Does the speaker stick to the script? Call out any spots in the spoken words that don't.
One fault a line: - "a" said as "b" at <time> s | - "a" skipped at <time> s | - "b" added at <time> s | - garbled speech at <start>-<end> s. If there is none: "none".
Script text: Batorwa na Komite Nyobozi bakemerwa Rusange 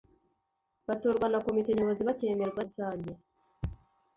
none